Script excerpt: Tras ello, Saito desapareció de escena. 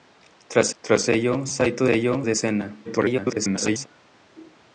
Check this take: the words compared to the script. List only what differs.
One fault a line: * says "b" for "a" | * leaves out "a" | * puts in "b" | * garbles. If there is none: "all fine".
* puts in "tras"
* says "ello" for "desapareció"
* garbles